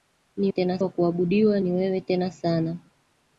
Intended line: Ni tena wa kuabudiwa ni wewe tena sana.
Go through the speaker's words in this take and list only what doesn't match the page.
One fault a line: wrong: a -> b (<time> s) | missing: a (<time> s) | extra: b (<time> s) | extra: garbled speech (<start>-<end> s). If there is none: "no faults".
no faults